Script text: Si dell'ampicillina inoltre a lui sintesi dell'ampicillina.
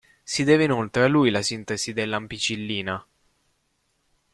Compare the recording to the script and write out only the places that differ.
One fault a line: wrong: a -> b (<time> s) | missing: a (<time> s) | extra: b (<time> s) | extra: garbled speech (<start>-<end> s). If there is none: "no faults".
wrong: dell'ampicillina -> deve (0.4 s)
extra: la (1.3 s)